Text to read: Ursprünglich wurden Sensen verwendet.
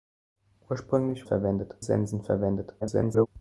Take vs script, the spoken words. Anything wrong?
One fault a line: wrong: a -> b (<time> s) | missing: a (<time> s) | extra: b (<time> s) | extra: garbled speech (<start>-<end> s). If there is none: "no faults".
wrong: wurden -> verwendet (1.2 s)
extra: garbled speech (2.8-3.3 s)